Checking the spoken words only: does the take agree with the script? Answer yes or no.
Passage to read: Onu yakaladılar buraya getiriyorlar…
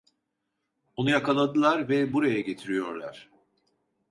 no